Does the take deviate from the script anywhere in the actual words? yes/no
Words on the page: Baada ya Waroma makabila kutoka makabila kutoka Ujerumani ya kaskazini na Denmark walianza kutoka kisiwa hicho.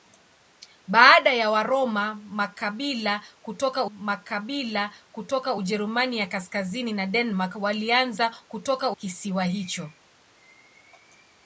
no